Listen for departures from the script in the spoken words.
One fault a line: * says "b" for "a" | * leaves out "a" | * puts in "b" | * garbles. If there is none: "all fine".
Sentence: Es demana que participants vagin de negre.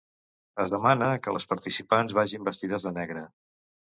* puts in "les"
* puts in "vestides"